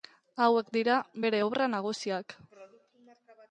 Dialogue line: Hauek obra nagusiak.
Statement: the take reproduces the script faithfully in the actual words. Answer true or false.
false